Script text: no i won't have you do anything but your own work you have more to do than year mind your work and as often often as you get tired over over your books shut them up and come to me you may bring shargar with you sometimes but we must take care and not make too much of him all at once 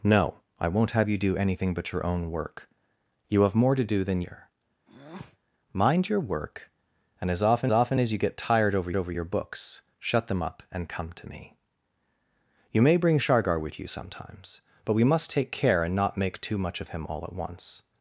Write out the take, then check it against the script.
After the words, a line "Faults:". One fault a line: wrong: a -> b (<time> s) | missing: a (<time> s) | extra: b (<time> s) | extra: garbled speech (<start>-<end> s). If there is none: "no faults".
no i won't have you do anything but your own work you have more to do than year mind your work and as often often as you get tired over over your books shut them up and come to me you may bring shargar with you sometimes but we must take care and not make too much of him all at once
Faults:
no faults